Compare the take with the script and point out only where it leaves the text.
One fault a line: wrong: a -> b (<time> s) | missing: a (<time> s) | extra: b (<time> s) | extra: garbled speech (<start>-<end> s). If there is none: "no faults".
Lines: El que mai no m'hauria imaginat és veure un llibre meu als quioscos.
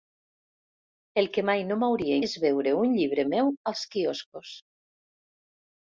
missing: imaginat (2.2 s)